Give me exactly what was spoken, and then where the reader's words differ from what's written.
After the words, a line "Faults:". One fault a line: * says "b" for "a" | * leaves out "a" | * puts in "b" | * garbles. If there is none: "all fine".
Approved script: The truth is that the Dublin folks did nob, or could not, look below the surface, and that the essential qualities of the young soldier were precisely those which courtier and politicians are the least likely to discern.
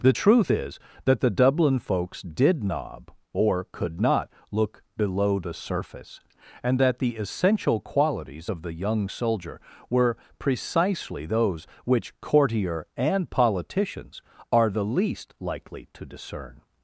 The truth is that the Dublin folks did nob, or could not, look below the surface, and that the essential qualities of the young soldier were precisely those which courtier and politicians are the least likely to discern.
Faults:
all fine